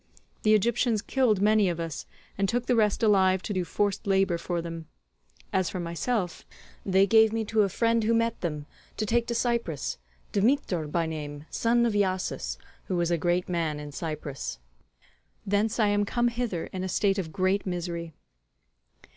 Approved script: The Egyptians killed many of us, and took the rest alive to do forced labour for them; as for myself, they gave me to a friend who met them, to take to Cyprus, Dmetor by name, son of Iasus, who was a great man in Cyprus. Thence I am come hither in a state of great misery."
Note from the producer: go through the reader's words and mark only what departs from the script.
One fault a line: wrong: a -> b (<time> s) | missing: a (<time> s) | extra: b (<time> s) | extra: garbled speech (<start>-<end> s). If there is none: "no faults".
no faults